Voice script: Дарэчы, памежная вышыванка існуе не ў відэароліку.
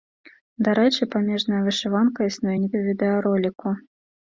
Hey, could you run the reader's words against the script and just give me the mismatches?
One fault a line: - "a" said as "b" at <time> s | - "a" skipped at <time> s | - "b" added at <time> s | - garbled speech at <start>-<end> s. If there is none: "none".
none